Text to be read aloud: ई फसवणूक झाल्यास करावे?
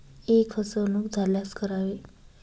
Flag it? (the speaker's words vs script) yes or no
no